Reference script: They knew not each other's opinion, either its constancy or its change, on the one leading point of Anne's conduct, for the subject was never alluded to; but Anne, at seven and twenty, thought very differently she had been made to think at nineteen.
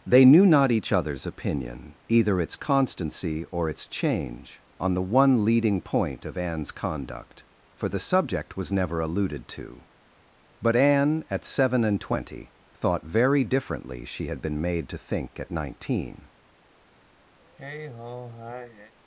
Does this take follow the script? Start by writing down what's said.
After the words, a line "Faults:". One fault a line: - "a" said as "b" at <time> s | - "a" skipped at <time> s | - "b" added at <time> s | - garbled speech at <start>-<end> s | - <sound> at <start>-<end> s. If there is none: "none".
They knew not each other's opinion, either its constancy or its change, on the one leading point of Anne's conduct, for the subject was never alluded to; but Anne, at seven and twenty, thought very differently she had been made to think at nineteen.
Faults:
- sigh at 17.4-18.9 s